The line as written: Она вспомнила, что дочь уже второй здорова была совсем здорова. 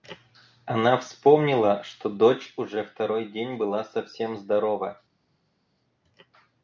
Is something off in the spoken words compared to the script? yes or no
yes